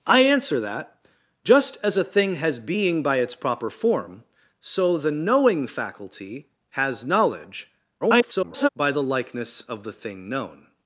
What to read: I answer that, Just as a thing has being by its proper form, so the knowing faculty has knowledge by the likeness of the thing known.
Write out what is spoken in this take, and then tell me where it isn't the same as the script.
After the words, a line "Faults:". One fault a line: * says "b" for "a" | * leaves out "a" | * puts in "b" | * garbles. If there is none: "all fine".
I answer that, Just as a thing has being by its proper form, so the knowing faculty has knowledge [garbled] by the likeness of the thing known.
Faults:
* garbles